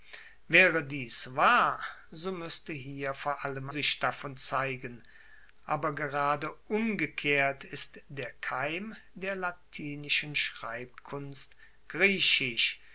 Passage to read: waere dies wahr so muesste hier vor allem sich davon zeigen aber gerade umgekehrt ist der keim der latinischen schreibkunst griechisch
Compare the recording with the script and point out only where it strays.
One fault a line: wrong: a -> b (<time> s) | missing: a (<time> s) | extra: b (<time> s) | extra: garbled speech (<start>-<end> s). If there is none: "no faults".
no faults